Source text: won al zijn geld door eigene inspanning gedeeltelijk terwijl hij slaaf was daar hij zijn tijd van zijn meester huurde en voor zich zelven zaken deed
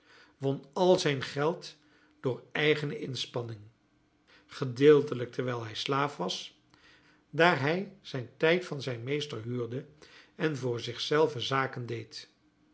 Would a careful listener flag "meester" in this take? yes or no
no